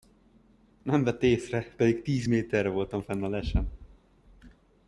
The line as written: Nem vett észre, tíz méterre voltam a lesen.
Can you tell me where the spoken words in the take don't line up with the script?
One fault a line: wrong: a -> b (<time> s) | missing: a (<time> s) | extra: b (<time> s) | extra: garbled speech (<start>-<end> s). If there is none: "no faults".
extra: pedig (1.8 s)
extra: fenn (3.0 s)